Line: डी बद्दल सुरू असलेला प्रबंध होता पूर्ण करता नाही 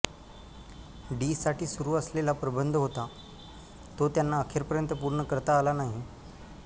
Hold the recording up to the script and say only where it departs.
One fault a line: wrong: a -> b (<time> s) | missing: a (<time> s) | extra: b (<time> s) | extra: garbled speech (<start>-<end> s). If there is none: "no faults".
wrong: बद्दल -> साठी (1.4 s)
extra: तो त्यांना अखेरपर्यंत (4.0 s)
extra: आला (5.6 s)